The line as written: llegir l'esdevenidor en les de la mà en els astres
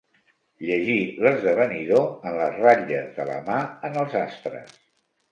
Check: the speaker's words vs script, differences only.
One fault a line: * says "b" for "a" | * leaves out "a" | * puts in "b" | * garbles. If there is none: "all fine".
* puts in "ratlles"